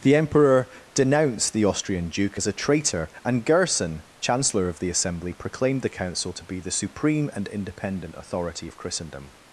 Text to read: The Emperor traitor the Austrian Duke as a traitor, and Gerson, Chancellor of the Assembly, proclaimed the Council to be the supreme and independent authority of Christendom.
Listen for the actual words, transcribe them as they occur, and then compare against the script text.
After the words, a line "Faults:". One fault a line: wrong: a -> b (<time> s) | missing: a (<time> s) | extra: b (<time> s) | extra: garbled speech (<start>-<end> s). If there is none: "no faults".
The Emperor denounced the Austrian Duke as a traitor, and Gerson, Chancellor of the Assembly, proclaimed the Council to be the supreme and independent authority of Christendom.
Faults:
wrong: traitor -> denounced (0.9 s)